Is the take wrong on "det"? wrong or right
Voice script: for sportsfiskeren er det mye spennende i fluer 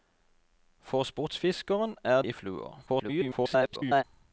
wrong